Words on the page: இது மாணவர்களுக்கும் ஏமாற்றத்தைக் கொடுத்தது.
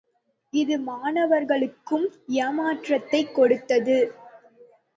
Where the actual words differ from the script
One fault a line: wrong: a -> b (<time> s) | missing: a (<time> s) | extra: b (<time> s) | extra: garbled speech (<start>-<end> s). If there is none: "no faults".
no faults